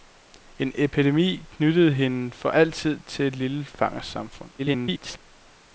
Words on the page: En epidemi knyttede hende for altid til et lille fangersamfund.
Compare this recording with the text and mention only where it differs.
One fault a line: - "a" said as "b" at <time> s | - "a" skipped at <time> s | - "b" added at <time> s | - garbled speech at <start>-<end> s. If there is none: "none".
- garbled speech at 4.6-5.2 s